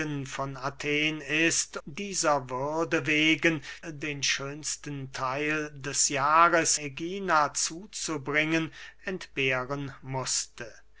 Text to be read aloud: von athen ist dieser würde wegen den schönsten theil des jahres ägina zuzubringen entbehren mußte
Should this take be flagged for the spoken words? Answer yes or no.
no